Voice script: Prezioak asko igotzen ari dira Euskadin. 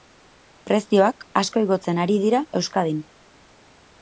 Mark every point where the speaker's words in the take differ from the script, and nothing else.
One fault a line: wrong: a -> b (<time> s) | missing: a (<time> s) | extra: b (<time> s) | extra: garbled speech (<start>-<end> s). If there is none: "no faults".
no faults